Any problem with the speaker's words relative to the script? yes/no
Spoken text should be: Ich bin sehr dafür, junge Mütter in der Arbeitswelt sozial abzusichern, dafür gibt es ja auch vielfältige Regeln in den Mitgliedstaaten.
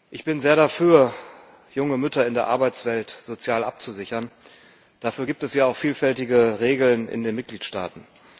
no